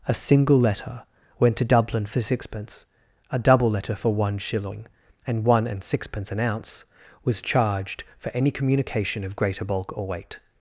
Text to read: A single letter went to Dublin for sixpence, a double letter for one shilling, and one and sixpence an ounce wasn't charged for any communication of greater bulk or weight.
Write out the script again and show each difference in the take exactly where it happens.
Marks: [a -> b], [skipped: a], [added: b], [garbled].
A single letter went to Dublin for sixpence, a double letter for one shilling, and one and sixpence an ounce [wasn't -> was] charged for any communication of greater bulk or weight.